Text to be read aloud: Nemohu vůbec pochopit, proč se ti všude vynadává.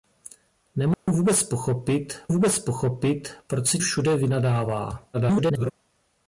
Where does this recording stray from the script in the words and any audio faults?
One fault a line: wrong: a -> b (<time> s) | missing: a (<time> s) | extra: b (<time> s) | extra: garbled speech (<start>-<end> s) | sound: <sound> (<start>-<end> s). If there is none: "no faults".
sound: dropout (0.9-1.1 s)
extra: vůbec pochopit (2.3 s)
missing: ti (3.8 s)
extra: garbled speech (5.1-5.7 s)